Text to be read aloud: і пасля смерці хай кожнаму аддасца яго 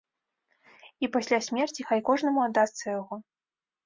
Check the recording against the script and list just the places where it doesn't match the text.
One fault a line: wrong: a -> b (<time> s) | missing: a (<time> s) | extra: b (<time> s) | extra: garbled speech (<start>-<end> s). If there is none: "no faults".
no faults